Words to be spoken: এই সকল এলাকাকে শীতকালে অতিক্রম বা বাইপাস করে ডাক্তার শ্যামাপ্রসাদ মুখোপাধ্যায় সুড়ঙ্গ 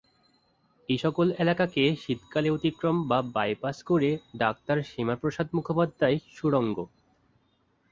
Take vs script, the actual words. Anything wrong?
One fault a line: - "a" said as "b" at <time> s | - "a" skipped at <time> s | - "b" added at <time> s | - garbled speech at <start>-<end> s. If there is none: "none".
none